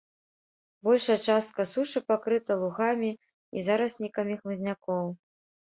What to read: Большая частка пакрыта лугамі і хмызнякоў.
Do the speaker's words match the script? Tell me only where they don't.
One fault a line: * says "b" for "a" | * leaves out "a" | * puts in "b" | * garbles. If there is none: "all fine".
* puts in "сушы"
* puts in "зараснікамі"